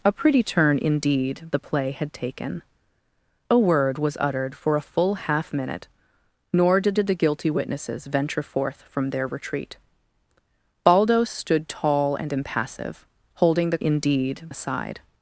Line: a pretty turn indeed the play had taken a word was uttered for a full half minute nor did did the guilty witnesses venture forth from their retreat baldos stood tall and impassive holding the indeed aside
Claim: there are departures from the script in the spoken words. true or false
false